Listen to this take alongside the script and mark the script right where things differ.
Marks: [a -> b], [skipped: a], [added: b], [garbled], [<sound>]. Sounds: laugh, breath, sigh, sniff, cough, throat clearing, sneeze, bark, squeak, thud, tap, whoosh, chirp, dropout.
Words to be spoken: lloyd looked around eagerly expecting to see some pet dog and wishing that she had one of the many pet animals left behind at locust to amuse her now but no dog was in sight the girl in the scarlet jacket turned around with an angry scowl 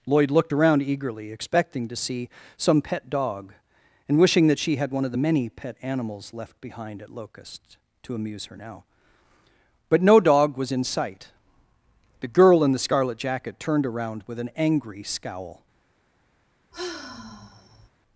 lloyd looked around eagerly expecting to see some pet dog and wishing that she had one of the many pet animals left behind at locust to amuse her now but no dog was in sight the girl in the scarlet jacket turned around with an angry scowl [sigh]